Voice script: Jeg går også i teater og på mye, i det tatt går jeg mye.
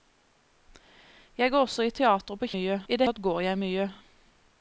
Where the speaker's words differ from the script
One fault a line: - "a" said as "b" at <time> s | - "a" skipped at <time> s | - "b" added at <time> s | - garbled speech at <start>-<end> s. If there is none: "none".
none